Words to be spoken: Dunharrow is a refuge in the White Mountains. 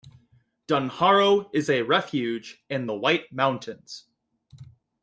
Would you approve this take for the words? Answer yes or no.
yes